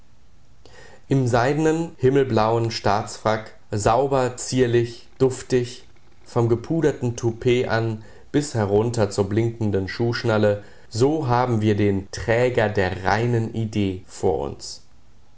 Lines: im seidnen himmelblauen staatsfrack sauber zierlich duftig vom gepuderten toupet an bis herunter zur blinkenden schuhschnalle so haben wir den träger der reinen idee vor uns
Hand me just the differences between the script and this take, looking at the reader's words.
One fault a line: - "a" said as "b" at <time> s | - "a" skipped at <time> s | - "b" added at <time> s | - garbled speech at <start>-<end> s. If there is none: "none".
none